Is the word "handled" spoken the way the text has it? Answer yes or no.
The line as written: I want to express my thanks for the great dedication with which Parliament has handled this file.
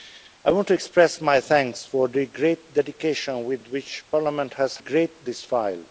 no